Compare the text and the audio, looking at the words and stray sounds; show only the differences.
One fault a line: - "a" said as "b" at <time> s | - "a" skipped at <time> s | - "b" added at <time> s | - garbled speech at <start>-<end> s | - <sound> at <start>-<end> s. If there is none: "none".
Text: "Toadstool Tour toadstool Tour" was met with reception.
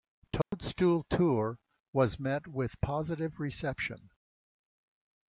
- dropout at 0.4-0.5 s
- "toadstool Tour" skipped at 1.6 s
- "positive" added at 2.8 s